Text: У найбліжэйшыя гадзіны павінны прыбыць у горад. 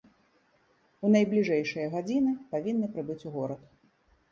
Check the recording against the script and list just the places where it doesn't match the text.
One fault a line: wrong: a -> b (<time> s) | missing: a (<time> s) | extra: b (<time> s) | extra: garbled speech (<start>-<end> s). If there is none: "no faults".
no faults